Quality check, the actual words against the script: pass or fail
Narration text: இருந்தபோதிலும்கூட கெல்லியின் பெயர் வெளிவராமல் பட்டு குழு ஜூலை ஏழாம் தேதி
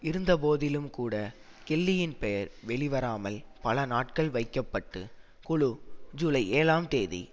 fail